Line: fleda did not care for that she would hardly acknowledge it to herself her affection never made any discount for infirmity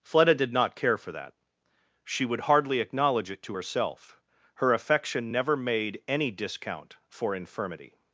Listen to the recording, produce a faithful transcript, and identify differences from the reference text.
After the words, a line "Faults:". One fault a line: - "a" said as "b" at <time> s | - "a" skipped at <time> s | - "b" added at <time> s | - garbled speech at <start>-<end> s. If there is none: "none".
fleda did not care for that she would hardly acknowledge it to herself her affection never made any discount for infirmity
Faults:
none